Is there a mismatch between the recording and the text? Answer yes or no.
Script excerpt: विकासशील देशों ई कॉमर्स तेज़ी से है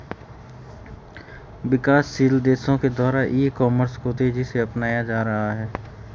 yes